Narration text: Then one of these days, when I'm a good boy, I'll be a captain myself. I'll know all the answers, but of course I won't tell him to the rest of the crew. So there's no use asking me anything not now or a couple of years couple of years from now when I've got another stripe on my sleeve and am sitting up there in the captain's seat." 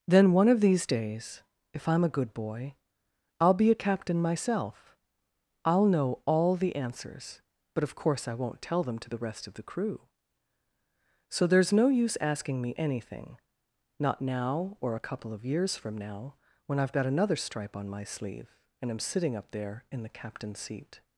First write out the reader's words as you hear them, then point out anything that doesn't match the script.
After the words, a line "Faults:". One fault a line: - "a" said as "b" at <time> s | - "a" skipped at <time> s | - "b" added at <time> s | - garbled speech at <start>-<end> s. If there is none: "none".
Then one of these days, if I'm a good boy, I'll be a captain myself. I'll know all the answers, but of course I won't tell them to the rest of the crew. So there's no use asking me anything not now or a couple of years from now when I've got another stripe on my sleeve and am sitting up there in the captain's seat."
Faults:
- "when" said as "if" at 1.7 s
- "him" said as "them" at 8.8 s
- "couple of years" skipped at 15.7 s